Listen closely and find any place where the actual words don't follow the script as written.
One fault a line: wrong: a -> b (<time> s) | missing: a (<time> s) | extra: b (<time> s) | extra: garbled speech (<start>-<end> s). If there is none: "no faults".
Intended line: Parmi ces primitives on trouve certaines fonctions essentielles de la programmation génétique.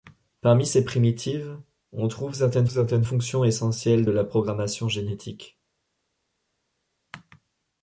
extra: certaines (2.7 s)